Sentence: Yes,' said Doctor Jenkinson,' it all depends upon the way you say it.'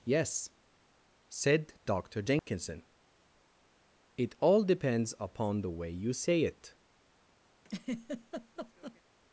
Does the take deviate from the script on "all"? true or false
false